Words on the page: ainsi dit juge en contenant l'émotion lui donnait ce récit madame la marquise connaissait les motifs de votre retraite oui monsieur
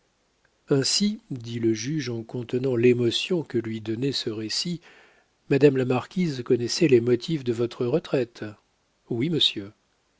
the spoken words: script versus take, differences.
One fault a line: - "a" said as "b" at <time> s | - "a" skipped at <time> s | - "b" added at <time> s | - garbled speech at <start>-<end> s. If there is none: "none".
- "le" added at 1.6 s
- "que" added at 3.4 s